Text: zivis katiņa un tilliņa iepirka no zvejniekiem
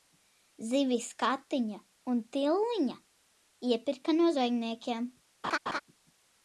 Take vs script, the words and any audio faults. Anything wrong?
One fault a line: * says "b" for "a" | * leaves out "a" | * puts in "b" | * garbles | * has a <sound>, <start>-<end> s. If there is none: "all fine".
* has a laugh, 5.4-5.8 s